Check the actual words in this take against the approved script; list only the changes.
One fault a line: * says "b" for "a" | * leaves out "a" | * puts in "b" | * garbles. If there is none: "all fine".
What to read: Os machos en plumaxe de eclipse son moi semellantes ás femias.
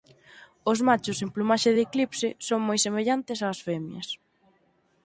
all fine